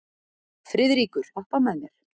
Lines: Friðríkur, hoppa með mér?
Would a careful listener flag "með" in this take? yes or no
no